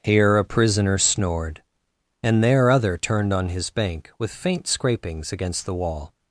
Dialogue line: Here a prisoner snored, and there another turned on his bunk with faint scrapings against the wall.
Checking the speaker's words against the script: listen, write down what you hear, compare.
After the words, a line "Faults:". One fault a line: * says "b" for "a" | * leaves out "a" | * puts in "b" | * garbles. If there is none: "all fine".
Here a prisoner snored, and there other turned on his bank with faint scrapings against the wall.
Faults:
* says "other" for "another"
* says "bank" for "bunk"